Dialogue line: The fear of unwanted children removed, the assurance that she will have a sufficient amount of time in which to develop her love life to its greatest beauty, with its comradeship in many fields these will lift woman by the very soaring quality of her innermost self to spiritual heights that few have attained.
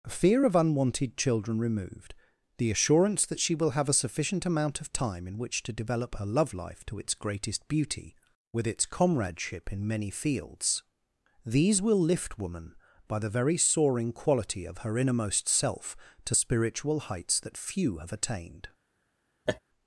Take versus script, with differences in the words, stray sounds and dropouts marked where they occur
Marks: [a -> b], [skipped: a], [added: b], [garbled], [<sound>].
[skipped: The] fear of unwanted children removed, the assurance that she will have a sufficient amount of time in which to develop her love life to its greatest beauty, with its comradeship in many fields these will lift woman by the very soaring quality of her innermost self to spiritual heights that few have attained. [laugh]